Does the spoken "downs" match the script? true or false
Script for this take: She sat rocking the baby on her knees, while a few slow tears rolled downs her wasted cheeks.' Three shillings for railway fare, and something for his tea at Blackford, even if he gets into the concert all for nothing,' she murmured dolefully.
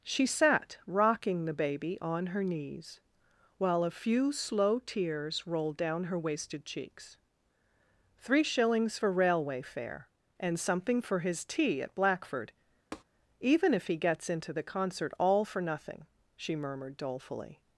false